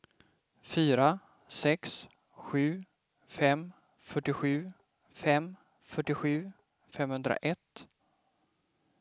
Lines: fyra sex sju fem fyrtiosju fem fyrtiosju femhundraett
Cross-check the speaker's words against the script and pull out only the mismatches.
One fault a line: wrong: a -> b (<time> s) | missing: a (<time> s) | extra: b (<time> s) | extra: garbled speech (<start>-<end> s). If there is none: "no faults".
no faults